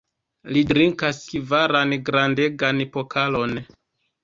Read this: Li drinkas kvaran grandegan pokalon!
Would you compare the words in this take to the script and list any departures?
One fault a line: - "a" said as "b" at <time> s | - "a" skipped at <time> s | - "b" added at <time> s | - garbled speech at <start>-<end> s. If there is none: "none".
none